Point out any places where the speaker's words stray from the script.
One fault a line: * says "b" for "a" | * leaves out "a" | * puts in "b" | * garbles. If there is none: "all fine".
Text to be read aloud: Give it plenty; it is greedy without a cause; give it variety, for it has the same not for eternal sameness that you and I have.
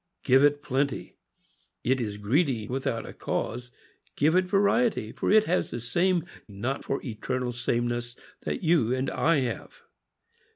all fine